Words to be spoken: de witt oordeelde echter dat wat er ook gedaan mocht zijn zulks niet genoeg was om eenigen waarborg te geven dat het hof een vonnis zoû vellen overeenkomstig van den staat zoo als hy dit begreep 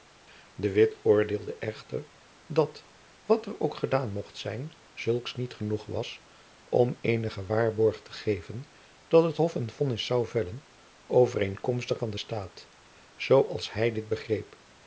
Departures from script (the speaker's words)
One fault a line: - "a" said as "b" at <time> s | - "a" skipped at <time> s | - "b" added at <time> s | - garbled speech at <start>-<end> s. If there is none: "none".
none